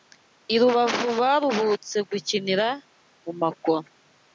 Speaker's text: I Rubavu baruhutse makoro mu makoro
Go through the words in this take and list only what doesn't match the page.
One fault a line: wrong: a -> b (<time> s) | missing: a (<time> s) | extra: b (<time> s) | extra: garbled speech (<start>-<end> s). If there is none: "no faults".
wrong: makoro -> gukinira (2.1 s)